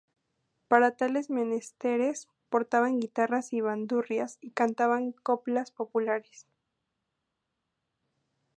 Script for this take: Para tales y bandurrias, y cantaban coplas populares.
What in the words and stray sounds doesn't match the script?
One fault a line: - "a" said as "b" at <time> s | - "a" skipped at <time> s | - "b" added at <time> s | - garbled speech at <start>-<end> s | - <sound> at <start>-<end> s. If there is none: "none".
- "menesteres portaban guitarras" added at 1.3 s